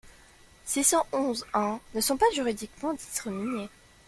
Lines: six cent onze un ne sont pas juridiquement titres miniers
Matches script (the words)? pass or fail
pass